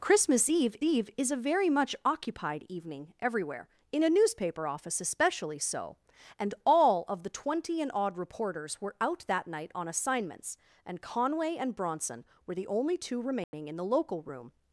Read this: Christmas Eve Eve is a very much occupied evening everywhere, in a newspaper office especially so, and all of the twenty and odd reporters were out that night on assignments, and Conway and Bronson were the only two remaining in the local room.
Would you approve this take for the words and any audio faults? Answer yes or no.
no